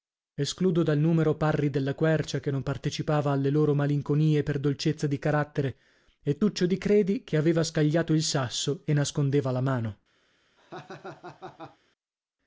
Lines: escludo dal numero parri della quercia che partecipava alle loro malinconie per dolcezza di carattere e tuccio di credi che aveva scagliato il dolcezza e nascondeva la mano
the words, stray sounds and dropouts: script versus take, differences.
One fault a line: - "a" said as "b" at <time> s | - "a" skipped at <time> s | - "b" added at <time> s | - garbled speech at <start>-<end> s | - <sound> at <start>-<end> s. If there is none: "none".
- "non" added at 2.5 s
- "dolcezza" said as "sasso" at 8.2 s
- laugh at 10.6-11.8 s